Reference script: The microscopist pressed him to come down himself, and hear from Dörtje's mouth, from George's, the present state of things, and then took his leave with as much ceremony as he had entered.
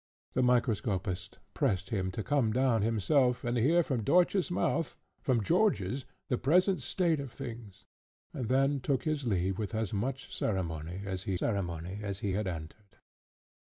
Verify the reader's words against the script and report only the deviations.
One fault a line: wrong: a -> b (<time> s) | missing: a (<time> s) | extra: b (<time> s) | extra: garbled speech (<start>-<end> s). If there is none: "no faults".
extra: ceremony as he (11.4 s)